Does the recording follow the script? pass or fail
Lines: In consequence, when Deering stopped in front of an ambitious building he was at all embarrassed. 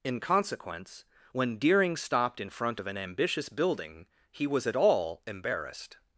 pass